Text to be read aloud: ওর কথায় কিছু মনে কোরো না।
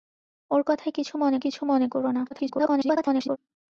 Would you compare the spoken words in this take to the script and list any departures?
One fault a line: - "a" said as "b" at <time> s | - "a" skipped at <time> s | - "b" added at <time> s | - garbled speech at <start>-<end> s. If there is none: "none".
- "কিছু মনে" added at 1.4 s
- garbled speech at 2.3-3.4 s